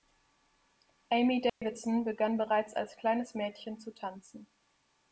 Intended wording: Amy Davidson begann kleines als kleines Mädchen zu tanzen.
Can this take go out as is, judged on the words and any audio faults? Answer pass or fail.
fail